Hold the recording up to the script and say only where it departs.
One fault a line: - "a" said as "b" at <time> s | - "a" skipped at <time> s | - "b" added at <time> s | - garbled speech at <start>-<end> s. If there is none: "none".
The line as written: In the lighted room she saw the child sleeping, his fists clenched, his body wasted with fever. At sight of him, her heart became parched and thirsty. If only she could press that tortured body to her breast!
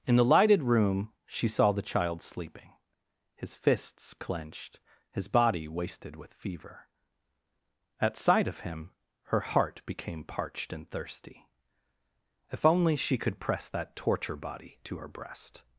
- "tortured" said as "torture" at 13.9 s